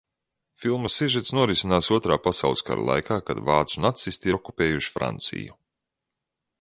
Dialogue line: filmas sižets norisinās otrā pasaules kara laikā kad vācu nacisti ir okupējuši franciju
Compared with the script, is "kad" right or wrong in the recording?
right